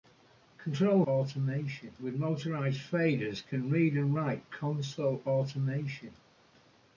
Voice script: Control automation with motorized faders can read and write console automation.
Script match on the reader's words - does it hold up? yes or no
yes